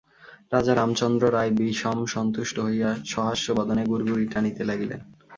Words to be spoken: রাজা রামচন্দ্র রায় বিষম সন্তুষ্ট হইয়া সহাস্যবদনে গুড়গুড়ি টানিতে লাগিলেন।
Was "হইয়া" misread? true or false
false